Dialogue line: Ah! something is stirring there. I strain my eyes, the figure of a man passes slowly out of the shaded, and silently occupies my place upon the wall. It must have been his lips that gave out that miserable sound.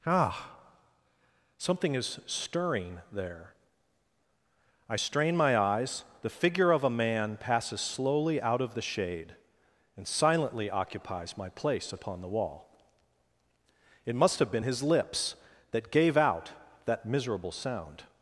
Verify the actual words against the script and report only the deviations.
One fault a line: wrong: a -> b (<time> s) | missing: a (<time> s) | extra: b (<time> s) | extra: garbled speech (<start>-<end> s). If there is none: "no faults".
wrong: shaded -> shade (8.8 s)